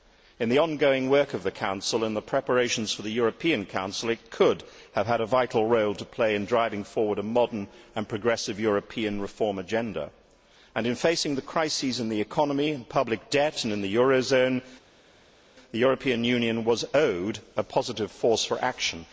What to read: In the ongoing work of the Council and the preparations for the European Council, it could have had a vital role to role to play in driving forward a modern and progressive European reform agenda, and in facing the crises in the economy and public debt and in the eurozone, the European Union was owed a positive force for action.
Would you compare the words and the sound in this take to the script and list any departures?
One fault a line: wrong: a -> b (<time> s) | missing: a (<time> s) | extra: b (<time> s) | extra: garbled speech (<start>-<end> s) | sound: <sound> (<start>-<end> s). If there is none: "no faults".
missing: role to (6.0 s)